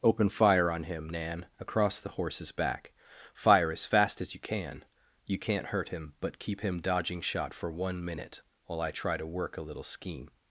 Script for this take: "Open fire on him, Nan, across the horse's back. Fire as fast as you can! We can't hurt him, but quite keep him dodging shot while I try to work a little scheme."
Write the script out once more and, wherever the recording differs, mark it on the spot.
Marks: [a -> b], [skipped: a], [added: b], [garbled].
"Open fire on him, Nan, across the horse's back. Fire as fast as you can! [We -> You] can't hurt him, but [skipped: quite] keep him dodging shot [added: for one minute] while I try to work a little scheme."